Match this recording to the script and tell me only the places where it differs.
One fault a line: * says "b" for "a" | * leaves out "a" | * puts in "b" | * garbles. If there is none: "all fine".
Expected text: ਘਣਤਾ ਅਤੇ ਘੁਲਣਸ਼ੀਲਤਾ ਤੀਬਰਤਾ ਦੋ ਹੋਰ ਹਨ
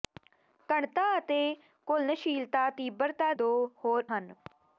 all fine